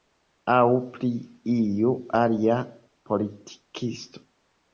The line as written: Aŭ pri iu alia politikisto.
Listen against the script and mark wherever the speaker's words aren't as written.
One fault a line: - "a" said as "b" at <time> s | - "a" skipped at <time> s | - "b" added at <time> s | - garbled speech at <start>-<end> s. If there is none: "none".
none